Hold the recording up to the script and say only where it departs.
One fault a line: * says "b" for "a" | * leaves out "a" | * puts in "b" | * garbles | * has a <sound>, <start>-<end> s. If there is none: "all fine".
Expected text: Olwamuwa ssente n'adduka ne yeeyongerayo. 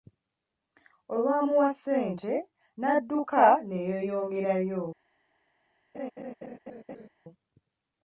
* has a laugh, 5.9-7.1 s